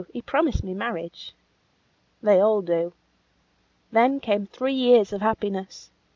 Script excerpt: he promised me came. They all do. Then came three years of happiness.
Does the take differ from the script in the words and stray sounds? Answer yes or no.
yes